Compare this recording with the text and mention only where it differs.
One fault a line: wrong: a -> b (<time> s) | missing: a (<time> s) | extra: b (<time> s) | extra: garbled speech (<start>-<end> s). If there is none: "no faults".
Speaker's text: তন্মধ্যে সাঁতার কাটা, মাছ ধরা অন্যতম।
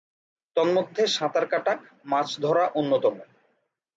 no faults